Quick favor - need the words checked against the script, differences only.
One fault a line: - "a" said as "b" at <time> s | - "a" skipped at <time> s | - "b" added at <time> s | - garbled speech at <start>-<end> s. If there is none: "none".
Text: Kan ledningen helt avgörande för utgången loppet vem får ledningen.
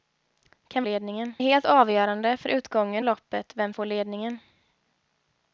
none